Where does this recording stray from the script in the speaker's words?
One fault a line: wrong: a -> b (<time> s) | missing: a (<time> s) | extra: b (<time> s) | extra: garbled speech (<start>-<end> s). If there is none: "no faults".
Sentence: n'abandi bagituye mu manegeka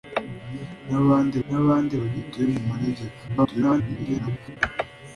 extra: n'abandi (1.5 s)
extra: garbled speech (3.3-4.6 s)